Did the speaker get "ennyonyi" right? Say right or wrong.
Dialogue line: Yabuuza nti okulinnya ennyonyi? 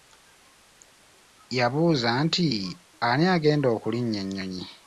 right